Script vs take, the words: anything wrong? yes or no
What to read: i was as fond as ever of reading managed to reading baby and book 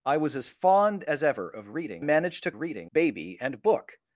no